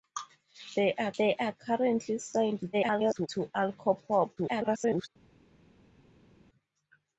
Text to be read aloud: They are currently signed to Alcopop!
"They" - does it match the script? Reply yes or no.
yes